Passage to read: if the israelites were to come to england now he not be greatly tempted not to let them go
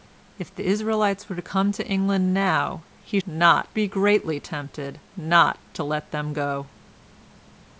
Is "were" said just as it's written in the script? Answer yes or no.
yes